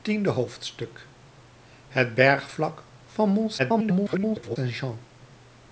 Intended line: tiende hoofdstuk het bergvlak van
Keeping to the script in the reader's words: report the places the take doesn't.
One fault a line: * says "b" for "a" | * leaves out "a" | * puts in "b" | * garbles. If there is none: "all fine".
* garbles